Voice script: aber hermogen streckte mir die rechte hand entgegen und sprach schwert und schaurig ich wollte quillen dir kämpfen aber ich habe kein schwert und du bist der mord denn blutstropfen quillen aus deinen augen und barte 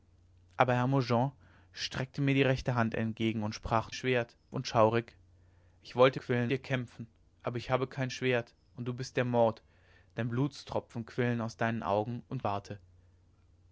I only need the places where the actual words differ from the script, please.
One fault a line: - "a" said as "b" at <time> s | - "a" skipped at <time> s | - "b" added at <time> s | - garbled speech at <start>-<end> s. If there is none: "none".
none